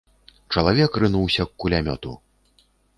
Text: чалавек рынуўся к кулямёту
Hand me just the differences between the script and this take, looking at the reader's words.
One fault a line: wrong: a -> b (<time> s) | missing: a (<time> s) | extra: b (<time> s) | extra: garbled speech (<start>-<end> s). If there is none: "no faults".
no faults